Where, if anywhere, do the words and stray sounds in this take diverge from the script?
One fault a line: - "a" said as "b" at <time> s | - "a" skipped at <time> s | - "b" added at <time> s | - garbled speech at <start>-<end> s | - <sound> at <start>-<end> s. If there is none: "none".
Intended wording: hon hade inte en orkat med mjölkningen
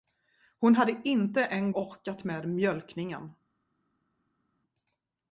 none